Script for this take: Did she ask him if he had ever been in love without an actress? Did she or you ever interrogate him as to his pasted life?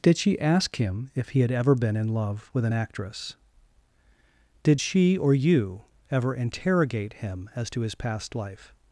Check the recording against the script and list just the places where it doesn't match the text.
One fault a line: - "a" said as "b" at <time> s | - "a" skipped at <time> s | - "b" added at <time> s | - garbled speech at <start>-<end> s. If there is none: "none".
- "without" said as "with" at 2.5 s
- "pasted" said as "past" at 8.0 s